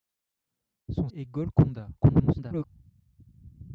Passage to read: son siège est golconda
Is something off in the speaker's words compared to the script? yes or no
yes